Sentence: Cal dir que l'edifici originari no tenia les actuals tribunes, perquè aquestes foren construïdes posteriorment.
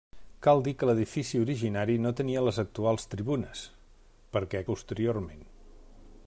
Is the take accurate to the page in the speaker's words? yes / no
no